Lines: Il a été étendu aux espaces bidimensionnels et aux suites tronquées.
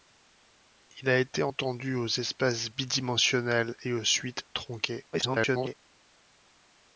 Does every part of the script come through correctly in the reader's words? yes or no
no